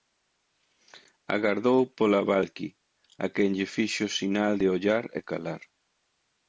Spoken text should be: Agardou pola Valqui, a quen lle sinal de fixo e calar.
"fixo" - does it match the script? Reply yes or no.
no